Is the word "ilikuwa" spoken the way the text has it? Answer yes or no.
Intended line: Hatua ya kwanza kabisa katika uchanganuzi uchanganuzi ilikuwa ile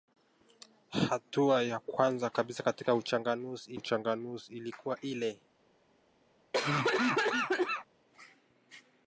yes